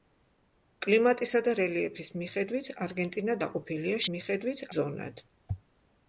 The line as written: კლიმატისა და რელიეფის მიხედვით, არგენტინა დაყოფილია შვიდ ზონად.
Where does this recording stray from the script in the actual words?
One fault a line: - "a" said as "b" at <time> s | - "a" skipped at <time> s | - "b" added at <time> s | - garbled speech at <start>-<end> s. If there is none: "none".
- "შვიდ" said as "მიხედვით" at 4.1 s